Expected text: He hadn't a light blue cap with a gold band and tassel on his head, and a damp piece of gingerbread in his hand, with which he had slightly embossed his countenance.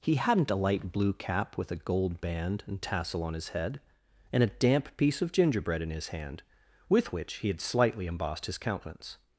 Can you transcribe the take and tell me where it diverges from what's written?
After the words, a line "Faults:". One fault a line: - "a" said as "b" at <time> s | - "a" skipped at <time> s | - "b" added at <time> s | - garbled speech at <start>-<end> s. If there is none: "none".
He hadn't a light blue cap with a gold band and tassel on his head, and a damp piece of gingerbread in his hand, with which he had slightly embossed his countenance.
Faults:
none